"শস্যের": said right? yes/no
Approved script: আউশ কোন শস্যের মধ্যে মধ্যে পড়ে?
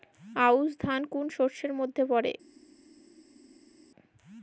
yes